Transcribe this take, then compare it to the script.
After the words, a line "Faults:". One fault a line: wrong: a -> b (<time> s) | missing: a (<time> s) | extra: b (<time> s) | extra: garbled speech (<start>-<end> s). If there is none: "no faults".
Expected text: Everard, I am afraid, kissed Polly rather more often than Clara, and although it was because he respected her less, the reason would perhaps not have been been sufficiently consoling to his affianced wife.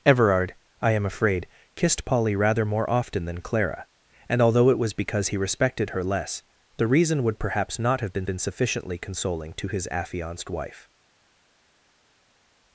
Everard, I am afraid, kissed Polly rather more often than Clara, and although it was because he respected her less, the reason would perhaps not have been been sufficiently consoling to his affianced wife.
Faults:
no faults